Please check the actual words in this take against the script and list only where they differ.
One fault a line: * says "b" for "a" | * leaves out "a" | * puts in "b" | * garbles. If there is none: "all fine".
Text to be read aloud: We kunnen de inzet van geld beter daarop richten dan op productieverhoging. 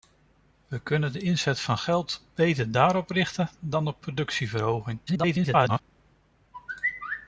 * garbles